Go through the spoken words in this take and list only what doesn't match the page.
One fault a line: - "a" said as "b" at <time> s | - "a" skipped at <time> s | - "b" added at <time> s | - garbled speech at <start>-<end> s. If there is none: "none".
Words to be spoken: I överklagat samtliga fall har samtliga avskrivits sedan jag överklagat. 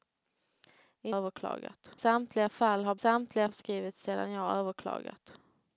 none